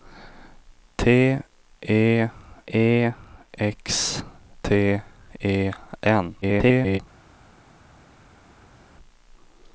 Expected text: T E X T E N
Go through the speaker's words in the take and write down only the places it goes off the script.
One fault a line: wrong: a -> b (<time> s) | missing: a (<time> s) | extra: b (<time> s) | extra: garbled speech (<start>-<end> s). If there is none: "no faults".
extra: E (2.7 s)
extra: garbled speech (6.4-7.0 s)